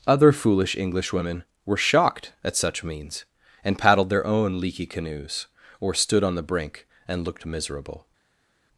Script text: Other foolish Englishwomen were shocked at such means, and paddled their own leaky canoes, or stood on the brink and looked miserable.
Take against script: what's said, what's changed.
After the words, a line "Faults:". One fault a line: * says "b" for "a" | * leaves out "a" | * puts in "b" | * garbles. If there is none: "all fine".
Other foolish Englishwomen were shocked at such means, and paddled their own leaky canoes, or stood on the brink and looked miserable.
Faults:
all fine